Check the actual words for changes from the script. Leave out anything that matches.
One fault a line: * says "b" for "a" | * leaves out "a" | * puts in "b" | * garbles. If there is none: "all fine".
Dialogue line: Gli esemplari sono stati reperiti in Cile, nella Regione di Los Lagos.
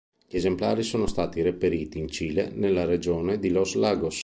all fine